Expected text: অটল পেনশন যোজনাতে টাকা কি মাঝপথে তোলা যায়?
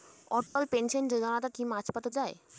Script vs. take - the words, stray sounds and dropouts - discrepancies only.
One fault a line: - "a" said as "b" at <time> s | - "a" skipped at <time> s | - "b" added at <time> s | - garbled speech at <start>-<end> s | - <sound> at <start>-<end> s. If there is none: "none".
- dropout at 0.5-0.6 s
- "টাকা" skipped at 1.5 s
- "তোলা" skipped at 2.1 s